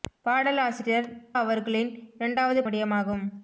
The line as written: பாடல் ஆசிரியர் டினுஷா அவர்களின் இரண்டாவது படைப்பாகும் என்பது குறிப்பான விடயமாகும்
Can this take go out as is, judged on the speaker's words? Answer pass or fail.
fail